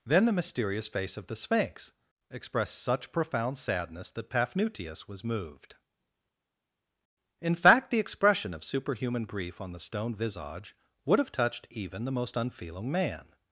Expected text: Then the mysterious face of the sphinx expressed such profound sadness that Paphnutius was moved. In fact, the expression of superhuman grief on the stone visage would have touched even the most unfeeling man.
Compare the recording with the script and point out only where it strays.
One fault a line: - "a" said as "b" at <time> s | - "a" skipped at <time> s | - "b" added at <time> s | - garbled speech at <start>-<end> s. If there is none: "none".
none